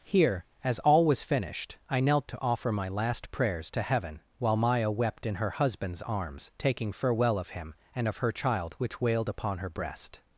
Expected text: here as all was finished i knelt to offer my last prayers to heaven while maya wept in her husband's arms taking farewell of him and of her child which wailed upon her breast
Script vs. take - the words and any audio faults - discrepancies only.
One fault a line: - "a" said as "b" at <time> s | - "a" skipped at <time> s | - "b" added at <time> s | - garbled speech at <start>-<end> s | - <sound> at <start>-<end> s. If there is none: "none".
none